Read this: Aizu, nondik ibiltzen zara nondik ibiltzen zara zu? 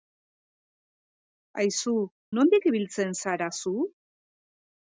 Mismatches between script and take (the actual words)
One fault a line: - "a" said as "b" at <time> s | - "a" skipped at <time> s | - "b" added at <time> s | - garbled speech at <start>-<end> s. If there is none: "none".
- "nondik ibiltzen zara" skipped at 3.5 s